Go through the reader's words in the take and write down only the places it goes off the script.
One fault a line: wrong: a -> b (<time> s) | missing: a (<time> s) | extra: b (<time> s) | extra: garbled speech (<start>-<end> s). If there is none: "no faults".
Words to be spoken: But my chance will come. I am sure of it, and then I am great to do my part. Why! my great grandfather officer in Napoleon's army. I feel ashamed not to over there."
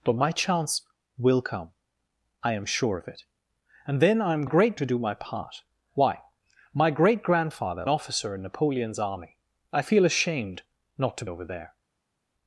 no faults